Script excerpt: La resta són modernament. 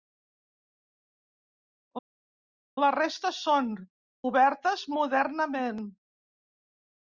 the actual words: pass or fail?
fail